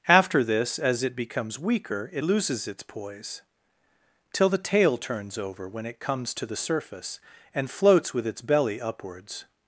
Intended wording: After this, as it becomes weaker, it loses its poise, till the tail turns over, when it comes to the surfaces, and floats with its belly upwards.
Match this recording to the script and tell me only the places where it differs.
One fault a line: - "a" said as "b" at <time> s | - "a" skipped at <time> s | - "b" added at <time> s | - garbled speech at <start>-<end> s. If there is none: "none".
- "surfaces" said as "surface" at 6.5 s